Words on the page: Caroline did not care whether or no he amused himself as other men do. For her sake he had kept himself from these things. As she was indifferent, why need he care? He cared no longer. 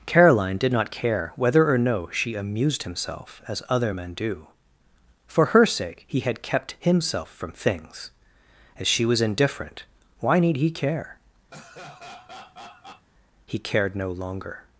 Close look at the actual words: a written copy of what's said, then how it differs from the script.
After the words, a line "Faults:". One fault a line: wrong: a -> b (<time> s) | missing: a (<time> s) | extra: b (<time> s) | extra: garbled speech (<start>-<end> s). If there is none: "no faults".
Caroline did not care whether or no she amused himself as other men do. For her sake he had kept himself from things. As she was indifferent, why need he care? He cared no longer.
Faults:
wrong: he -> she (2.1 s)
missing: these (7.5 s)